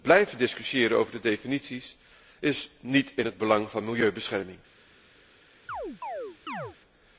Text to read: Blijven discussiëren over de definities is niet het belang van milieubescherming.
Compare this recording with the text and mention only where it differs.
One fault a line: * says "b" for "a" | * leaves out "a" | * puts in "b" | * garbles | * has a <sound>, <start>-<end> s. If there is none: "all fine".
* puts in "in"
* has a chirp, 5.7-6.8 s